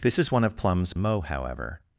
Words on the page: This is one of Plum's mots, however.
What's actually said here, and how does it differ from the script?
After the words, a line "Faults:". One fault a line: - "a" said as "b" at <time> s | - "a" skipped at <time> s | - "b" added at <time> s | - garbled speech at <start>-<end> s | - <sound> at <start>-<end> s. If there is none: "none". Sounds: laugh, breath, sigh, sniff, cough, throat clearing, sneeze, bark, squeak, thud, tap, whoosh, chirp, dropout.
This is one of Plum's mots, however.
Faults:
none